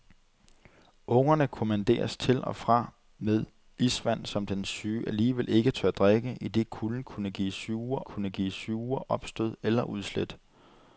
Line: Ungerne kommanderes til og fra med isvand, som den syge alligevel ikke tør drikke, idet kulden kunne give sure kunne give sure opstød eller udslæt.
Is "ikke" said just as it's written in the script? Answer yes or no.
yes